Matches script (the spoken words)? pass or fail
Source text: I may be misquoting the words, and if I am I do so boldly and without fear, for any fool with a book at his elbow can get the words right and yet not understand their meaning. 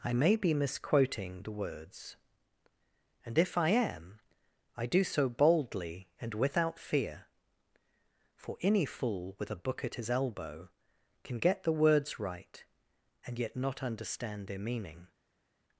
pass